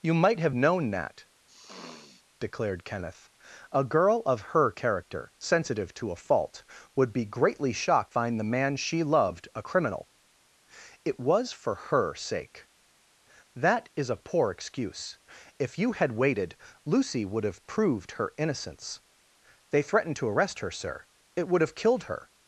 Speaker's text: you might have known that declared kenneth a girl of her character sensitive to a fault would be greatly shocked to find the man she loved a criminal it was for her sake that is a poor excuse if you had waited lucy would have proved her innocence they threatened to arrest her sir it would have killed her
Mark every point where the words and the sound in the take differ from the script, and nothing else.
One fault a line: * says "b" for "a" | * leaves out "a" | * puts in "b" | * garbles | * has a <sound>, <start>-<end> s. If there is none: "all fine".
* has a sniff, 1.5-2.2 s
* leaves out "to"